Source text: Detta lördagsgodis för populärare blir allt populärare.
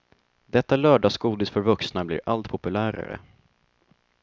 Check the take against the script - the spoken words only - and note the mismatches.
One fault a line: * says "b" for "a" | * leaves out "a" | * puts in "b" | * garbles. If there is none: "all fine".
* says "vuxna" for "populärare"